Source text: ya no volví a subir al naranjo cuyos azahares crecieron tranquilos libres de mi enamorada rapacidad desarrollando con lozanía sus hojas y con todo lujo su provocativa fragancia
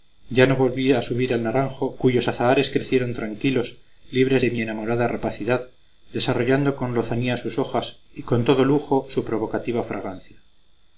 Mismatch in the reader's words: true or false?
false